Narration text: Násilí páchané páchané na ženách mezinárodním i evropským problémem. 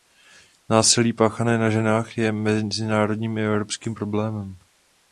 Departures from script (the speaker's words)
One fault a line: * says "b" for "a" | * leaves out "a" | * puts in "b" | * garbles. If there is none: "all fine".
* leaves out "páchané"
* puts in "je"